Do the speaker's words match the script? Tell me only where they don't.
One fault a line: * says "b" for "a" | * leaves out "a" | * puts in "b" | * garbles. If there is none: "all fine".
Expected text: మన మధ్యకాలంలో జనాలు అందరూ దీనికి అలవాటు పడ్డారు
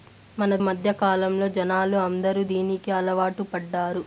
all fine